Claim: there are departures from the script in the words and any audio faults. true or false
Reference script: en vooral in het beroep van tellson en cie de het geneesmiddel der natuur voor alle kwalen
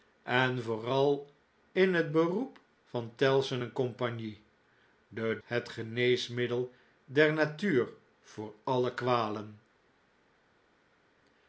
false